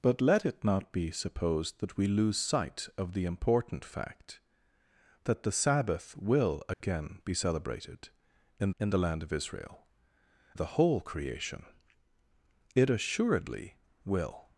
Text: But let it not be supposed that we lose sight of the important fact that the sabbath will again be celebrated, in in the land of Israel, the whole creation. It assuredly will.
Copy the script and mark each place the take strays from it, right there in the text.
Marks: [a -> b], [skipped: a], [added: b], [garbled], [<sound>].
But let it not be supposed that we lose sight of the important fact that the sabbath will again [dropout] be celebrated, in in the land of Israel, the whole creation. It assuredly will.